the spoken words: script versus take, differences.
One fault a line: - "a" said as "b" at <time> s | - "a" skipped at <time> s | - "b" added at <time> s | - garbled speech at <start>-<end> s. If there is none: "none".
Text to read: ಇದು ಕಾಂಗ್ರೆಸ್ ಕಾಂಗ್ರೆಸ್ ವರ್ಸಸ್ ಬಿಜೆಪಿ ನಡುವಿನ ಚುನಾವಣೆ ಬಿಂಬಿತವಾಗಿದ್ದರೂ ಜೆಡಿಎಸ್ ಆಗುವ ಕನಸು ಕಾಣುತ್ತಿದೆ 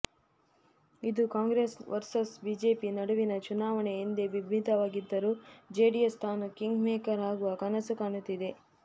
- "ಕಾಂಗ್ರೆಸ್" skipped at 1.8 s
- "ಎಂದೇ" added at 4.0 s
- "ತಾನು ಕಿಂಗ್ ಮೇಕರ್" added at 6.2 s